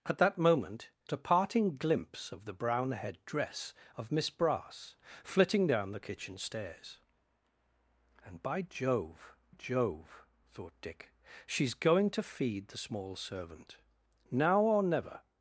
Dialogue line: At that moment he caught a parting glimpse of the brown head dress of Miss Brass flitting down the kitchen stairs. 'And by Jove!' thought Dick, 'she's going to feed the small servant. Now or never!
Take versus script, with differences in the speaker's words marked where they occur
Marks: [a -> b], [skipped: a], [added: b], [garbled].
At that moment [skipped: he caught] a parting glimpse of the brown head dress of Miss Brass flitting down the kitchen stairs. 'And by Jove!' [added: Jove] thought Dick, 'she's going to feed the small servant. Now or never!